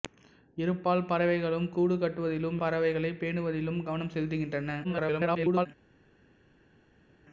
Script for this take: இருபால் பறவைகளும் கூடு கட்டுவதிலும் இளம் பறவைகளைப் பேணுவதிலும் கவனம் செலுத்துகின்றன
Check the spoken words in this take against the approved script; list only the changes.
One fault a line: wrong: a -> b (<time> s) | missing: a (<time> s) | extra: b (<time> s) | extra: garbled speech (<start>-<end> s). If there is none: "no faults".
missing: இளம் (2.6 s)
extra: garbled speech (4.8-5.7 s)